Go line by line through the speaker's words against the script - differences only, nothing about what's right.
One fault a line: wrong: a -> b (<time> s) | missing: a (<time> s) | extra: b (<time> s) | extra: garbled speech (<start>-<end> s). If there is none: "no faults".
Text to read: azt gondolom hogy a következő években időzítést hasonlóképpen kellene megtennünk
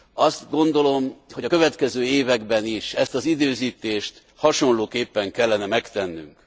extra: is ezt az (2.6 s)